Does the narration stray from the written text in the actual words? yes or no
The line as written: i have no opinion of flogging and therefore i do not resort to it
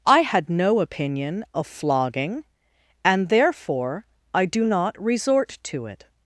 yes